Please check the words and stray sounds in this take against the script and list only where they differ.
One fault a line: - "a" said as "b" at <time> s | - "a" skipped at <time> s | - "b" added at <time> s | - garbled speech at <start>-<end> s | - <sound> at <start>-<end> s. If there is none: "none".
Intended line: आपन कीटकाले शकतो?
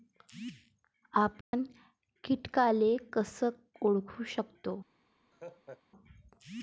- dropout at 1.4-1.5 s
- "कस ओळखू" added at 3.1 s
- laugh at 5.3-5.8 s